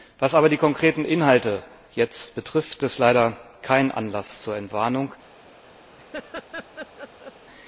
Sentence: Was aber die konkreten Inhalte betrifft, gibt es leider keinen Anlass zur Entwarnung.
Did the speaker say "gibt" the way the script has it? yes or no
no